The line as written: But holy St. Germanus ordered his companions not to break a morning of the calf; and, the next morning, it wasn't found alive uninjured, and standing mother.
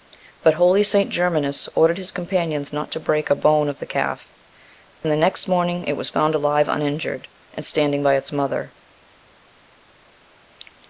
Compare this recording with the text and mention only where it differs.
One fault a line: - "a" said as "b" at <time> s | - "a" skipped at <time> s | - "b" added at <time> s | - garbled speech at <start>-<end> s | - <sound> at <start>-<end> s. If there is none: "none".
- "morning" said as "bone" at 3.4 s
- "wasn't" said as "was" at 5.9 s
- "by its" added at 8.0 s